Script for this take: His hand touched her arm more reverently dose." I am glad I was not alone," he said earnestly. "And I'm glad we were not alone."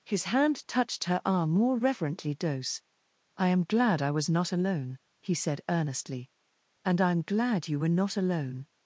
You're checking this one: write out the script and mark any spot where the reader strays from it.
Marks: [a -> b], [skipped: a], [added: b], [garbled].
His hand touched her arm more reverently dose." I am glad I was not alone," he said earnestly. "And I'm glad [we -> you] were not alone."